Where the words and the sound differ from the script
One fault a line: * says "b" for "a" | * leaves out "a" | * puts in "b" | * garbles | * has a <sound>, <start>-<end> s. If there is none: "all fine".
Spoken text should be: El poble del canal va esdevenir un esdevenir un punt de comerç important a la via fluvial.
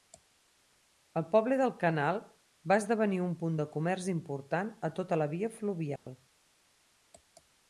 * leaves out "esdevenir un"
* puts in "tota"
* has a dropout, 6.0-6.1 s